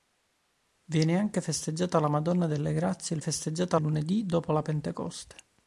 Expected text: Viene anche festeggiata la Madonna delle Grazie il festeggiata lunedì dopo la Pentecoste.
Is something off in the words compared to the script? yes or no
no